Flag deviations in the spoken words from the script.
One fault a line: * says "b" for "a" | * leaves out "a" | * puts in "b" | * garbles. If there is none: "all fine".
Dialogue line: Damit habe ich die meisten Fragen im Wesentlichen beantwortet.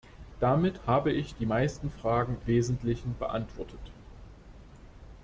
* leaves out "im"